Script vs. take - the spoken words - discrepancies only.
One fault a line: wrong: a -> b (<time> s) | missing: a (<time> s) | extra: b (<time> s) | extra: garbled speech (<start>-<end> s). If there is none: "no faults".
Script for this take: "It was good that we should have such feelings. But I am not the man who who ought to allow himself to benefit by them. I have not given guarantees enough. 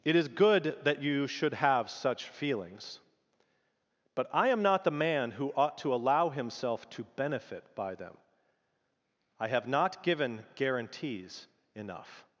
wrong: was -> is (0.1 s)
wrong: we -> you (1.0 s)
missing: who (5.5 s)